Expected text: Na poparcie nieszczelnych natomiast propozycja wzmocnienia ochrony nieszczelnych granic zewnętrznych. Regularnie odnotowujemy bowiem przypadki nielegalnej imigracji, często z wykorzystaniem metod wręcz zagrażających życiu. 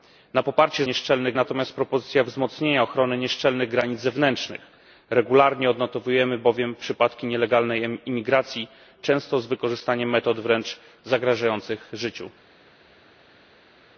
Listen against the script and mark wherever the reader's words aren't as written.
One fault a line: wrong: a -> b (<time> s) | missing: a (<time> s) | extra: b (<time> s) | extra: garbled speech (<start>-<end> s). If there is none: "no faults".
no faults